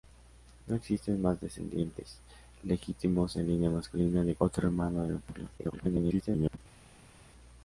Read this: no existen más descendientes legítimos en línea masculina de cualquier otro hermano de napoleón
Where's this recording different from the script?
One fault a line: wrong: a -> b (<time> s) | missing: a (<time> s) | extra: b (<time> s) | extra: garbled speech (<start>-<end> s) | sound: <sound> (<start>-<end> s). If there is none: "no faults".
missing: cualquier (4.3 s)
extra: garbled speech (5.6-6.6 s)